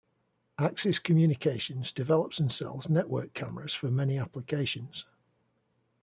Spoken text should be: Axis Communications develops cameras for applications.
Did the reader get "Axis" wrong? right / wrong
right